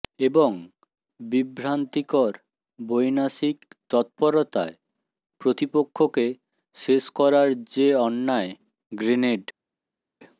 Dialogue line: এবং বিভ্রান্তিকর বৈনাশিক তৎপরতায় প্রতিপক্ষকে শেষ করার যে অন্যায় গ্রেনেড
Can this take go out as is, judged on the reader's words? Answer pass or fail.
pass